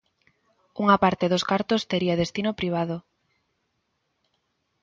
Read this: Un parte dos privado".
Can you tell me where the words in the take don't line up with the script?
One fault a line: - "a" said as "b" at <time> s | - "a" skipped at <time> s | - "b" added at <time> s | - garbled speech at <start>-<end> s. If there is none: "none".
- "Un" said as "Unha" at 0.8 s
- "cartos tería destino" added at 1.5 s